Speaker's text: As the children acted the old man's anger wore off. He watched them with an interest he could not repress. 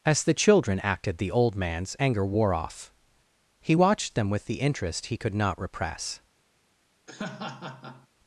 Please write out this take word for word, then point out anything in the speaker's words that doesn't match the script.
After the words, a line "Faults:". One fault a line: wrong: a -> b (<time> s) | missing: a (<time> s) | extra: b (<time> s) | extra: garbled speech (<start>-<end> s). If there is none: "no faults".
As the children acted the old man's anger wore off. He watched them with the interest he could not repress.
Faults:
wrong: an -> the (4.4 s)